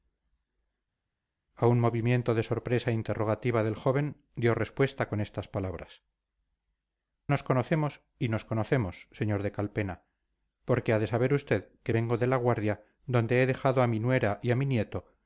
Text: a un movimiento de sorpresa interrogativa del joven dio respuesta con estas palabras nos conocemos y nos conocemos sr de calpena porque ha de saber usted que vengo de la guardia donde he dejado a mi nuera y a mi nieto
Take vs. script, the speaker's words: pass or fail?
pass